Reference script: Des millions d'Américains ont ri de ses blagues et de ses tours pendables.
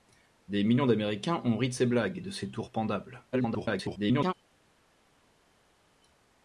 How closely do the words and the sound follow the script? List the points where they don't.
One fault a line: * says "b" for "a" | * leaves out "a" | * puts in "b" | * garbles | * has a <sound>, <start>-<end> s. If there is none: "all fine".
* garbles